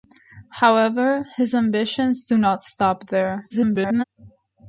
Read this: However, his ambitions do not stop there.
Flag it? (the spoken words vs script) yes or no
yes